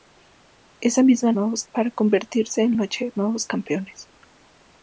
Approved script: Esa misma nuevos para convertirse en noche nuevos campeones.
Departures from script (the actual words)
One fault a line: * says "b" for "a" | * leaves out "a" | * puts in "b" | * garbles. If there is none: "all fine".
all fine